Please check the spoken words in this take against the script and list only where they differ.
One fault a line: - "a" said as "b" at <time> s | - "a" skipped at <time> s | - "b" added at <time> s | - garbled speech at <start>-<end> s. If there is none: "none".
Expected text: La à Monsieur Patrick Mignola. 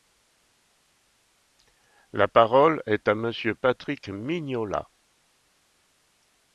- "parole est" added at 2.3 s